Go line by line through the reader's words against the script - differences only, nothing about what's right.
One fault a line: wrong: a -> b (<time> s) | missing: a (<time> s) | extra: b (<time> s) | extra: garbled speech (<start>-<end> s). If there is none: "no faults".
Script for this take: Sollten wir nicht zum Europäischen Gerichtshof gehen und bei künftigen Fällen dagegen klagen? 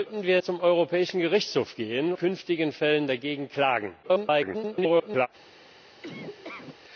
missing: nicht (0.4 s)
missing: und bei (2.1 s)
extra: garbled speech (4.0-5.3 s)